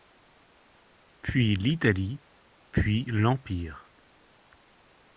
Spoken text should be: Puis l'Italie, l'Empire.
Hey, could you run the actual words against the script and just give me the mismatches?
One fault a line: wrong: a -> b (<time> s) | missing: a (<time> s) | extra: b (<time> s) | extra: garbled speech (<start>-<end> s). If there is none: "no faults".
extra: puis (2.7 s)